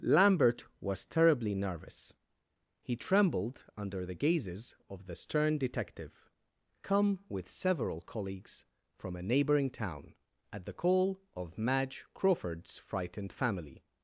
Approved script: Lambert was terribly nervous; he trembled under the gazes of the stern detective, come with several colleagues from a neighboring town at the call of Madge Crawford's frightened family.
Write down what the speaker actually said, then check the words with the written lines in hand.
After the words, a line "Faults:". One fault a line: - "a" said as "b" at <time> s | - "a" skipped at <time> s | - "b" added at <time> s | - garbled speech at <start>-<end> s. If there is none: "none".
Lambert was terribly nervous; he trembled under the gazes of the stern detective, come with several colleagues from a neighboring town at the call of Madge Crawford's frightened family.
Faults:
none